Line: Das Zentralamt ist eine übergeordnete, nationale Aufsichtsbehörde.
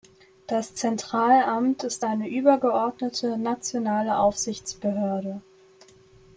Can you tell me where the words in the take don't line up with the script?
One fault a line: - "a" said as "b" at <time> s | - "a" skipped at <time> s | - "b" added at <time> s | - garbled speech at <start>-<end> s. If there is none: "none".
none